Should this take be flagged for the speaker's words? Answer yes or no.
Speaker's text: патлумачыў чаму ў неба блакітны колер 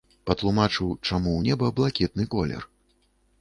no